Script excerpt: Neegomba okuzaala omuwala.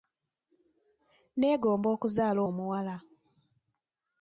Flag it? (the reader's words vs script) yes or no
no